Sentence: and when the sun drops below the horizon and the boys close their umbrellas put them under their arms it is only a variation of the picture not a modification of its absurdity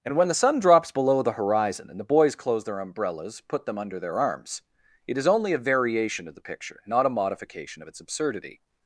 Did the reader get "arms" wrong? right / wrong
right